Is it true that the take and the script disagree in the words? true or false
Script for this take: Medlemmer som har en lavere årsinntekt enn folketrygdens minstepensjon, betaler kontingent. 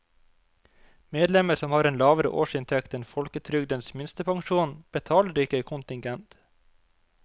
true